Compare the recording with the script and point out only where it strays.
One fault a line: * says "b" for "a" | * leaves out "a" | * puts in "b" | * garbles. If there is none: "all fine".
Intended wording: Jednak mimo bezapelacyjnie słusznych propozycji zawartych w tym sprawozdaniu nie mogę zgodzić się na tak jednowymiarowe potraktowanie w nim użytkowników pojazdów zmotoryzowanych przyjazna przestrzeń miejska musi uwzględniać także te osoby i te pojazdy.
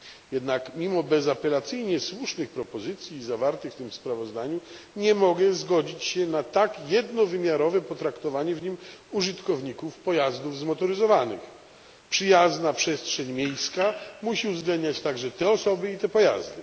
all fine